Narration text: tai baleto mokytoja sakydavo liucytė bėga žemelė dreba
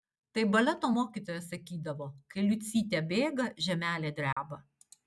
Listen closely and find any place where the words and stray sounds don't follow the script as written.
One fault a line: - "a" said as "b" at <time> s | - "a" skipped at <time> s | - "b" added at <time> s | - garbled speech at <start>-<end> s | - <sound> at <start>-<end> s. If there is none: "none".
- "kai" added at 2.4 s
- dropout at 4.3-4.4 s